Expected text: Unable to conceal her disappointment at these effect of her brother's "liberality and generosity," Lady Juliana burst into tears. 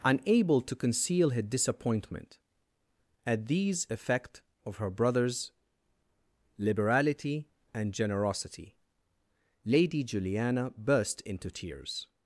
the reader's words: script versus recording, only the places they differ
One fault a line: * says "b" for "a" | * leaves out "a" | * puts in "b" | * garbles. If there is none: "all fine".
all fine